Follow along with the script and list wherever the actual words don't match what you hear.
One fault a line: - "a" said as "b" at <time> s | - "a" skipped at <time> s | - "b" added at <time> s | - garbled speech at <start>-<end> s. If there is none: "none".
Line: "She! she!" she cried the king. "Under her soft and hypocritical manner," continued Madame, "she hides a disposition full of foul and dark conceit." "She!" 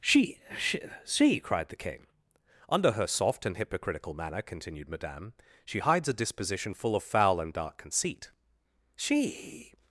none